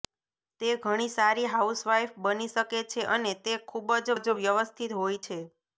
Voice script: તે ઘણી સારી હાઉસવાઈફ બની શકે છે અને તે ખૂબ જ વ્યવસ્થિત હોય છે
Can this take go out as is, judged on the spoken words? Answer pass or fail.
fail